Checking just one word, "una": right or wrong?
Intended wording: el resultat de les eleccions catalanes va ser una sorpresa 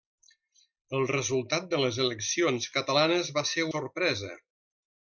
wrong